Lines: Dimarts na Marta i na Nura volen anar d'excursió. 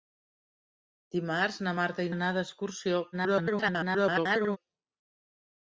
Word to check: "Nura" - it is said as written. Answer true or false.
false